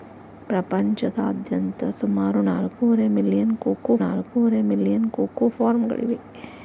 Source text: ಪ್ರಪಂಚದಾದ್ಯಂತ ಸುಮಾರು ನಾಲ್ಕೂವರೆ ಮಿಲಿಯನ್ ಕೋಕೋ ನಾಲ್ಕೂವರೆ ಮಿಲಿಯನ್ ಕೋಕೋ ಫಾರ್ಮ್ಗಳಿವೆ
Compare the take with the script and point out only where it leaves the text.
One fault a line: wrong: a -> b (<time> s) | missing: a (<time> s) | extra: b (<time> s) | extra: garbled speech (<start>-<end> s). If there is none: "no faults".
no faults